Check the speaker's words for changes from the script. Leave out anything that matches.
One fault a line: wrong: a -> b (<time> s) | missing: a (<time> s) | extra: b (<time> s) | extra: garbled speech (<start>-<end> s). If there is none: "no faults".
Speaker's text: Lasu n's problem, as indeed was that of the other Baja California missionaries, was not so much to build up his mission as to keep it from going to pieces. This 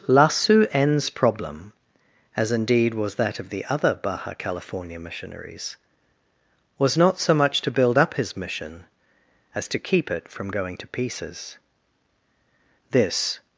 no faults